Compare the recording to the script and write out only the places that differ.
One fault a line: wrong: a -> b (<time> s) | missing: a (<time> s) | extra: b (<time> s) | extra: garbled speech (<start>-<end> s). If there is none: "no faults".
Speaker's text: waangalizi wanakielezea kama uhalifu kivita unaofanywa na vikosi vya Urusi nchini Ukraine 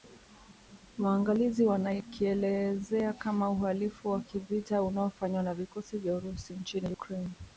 extra: wa (4.1 s)